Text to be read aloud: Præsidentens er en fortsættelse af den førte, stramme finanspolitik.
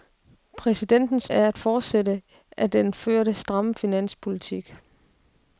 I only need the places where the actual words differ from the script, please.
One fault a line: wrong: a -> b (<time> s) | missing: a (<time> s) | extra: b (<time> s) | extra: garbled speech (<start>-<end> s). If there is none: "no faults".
no faults